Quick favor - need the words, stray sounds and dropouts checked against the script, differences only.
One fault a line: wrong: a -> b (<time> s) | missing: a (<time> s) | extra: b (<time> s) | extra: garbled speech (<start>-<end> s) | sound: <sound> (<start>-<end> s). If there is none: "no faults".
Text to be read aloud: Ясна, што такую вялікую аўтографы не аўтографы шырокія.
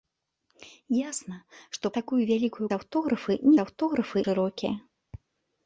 no faults